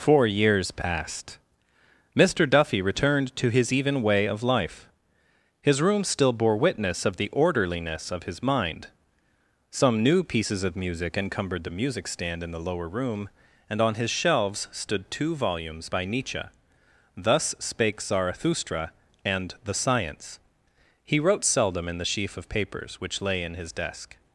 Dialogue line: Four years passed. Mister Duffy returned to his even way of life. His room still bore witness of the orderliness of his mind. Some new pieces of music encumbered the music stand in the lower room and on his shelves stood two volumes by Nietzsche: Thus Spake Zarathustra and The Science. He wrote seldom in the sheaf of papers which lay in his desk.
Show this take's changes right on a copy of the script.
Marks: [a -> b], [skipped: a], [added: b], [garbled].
Four years passed. Mister Duffy returned to his even way of life. His room still bore witness of the orderliness of his mind. Some new pieces of music encumbered the music stand in the lower room and on his shelves stood two volumes by Nietzsche: Thus Spake Zarathustra and The Science. He wrote seldom in the sheaf of papers which lay in his desk.